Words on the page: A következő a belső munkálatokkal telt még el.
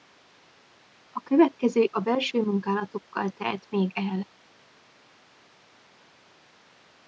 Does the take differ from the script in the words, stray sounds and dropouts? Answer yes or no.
no